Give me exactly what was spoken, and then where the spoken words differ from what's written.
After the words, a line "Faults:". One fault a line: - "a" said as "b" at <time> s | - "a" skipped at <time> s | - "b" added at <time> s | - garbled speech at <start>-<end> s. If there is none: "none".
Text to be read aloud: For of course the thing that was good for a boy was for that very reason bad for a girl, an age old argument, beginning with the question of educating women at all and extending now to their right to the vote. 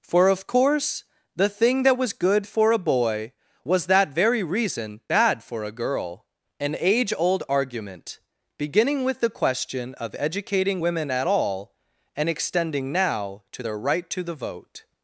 For of course the thing that was good for a boy was that very reason bad for a girl, an age old argument, beginning with the question of educating women at all and extending now to their right to the vote.
Faults:
- "for" skipped at 3.9 s